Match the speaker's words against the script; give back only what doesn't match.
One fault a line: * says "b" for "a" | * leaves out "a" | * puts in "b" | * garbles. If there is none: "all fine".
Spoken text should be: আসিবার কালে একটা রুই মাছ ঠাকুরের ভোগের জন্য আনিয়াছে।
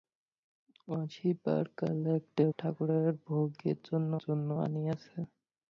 * leaves out "রুই মাছ"
* puts in "জন্য"